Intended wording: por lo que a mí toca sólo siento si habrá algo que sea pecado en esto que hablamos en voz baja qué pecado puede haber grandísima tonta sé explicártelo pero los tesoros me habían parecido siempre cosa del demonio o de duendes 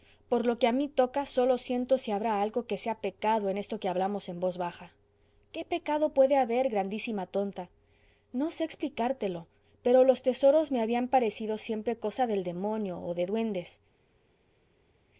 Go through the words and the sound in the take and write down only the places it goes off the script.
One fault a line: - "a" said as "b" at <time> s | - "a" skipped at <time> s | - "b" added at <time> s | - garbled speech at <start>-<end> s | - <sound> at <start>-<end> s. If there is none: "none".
- "no" added at 8.3 s